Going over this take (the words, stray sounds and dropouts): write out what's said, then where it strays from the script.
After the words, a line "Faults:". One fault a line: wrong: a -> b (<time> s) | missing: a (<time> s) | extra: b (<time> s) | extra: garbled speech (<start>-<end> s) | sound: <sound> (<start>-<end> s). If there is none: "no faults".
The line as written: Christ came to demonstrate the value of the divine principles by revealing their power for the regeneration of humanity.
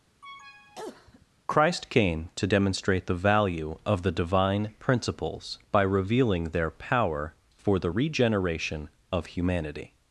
Christ came to demonstrate the value of the divine principles by revealing their power for the regeneration of humanity.
Faults:
sound: cough (0.2-1.3 s)